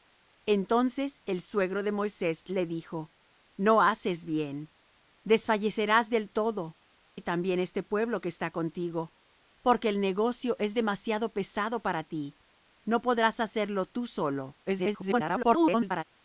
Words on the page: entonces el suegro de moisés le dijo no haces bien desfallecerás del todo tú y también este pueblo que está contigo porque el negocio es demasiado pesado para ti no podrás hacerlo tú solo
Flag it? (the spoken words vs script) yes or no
yes